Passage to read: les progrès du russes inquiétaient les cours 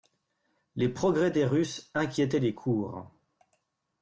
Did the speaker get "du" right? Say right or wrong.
wrong